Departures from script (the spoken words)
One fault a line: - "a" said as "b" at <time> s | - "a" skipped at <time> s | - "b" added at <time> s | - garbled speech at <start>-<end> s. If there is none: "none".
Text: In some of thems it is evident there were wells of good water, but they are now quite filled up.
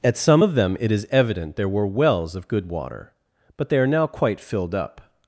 - "In" said as "At" at 0.0 s
- "thems" said as "them" at 0.5 s